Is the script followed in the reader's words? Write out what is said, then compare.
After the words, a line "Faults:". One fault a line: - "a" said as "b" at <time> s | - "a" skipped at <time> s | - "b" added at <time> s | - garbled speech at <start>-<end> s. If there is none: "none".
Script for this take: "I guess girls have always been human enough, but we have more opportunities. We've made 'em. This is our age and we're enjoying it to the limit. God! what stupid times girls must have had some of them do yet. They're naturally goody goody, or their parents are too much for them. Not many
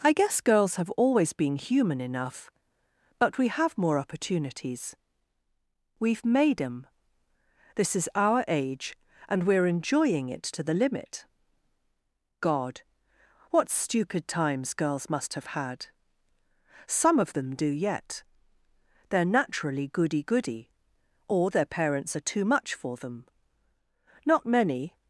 "I guess girls have always been human enough, but we have more opportunities. We've made 'em. This is our age and we're enjoying it to the limit. God! what stupid times girls must have had some of them do yet. They're naturally goody goody, or their parents are too much for them. Not many
Faults:
none